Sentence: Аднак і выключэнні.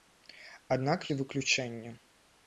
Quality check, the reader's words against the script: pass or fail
pass